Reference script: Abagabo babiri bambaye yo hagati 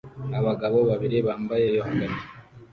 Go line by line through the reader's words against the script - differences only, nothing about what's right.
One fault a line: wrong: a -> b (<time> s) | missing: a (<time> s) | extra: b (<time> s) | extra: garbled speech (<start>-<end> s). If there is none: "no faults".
no faults